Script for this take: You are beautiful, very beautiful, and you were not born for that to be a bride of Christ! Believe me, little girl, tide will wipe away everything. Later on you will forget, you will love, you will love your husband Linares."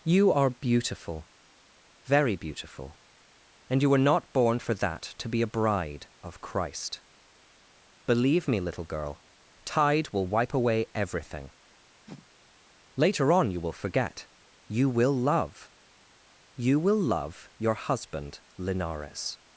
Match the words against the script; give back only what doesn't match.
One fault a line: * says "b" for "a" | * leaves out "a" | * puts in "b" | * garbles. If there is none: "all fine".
all fine